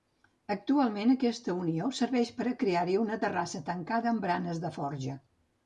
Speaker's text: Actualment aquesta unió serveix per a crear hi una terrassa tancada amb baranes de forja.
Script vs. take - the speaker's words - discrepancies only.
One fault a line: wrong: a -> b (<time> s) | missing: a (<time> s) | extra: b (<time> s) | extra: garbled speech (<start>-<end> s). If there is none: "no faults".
no faults